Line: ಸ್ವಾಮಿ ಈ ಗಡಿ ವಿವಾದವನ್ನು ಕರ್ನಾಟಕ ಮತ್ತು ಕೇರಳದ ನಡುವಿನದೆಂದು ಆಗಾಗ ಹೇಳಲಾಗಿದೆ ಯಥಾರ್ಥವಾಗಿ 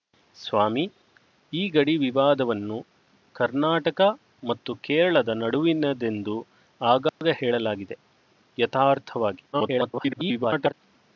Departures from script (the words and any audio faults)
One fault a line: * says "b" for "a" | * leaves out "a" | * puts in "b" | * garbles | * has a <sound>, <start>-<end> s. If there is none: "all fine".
* has a dropout, 7.1-7.2 s
* garbles